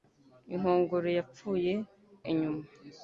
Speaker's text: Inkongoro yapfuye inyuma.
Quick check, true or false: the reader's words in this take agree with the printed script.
true